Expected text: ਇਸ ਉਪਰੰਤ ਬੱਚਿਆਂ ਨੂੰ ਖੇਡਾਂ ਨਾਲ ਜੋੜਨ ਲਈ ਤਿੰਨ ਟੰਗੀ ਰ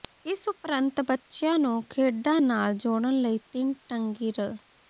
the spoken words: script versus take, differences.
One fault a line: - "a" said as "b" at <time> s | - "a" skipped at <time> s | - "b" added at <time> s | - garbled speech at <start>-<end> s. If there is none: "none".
none